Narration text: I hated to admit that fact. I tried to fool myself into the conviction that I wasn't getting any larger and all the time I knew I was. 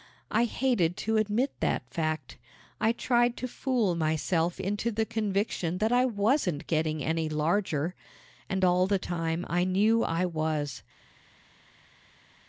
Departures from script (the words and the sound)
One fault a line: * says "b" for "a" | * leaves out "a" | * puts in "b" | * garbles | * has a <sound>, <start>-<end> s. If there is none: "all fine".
all fine